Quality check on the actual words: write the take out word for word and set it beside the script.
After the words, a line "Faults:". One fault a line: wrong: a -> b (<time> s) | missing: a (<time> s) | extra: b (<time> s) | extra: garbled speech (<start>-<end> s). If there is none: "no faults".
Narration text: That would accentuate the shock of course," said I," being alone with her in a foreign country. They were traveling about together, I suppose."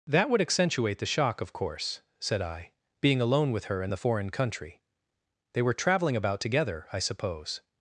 That would accentuate the shock of course," said I," being alone with her in the foreign country. They were traveling about together, I suppose."
Faults:
wrong: a -> the (3.9 s)